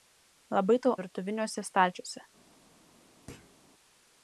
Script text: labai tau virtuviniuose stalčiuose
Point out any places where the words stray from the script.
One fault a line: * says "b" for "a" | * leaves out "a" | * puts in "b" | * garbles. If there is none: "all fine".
all fine